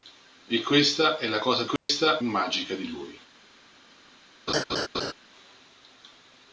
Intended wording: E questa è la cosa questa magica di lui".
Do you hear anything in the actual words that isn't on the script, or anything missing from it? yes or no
no